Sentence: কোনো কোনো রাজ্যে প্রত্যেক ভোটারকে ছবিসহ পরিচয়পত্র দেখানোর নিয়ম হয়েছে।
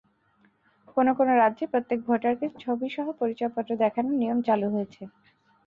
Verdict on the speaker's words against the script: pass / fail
fail